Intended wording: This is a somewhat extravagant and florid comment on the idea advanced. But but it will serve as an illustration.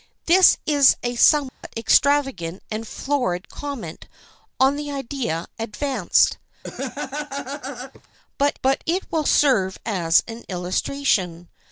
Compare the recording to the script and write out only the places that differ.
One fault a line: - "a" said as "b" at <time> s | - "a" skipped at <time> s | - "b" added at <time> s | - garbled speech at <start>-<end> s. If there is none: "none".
none